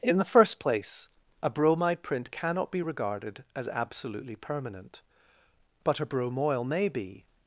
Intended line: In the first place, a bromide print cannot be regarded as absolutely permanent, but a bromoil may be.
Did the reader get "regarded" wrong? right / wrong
right